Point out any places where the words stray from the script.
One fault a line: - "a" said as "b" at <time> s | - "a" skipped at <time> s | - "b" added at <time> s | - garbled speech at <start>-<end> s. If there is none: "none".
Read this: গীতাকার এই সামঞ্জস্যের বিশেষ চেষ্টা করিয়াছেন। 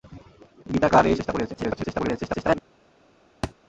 - "সামঞ্জস্যের বিশেষ" skipped at 1.1 s
- garbled speech at 1.5-2.6 s